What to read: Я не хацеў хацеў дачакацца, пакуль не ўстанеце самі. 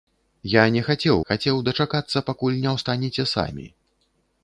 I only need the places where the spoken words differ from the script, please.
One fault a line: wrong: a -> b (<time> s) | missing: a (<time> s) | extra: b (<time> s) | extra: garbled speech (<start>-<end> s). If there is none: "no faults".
no faults